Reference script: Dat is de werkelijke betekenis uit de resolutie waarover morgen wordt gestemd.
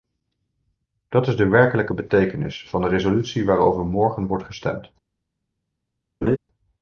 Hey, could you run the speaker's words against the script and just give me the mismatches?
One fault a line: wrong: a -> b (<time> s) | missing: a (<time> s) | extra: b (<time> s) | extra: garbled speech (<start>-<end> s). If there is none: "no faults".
wrong: uit -> van (2.7 s)